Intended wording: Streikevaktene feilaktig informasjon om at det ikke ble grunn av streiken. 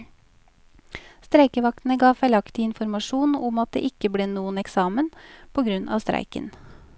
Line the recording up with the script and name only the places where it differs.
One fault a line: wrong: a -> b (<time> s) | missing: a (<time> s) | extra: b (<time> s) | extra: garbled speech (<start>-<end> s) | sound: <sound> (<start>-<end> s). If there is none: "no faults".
extra: ga (2.0 s)
extra: noen eksamen på (4.3 s)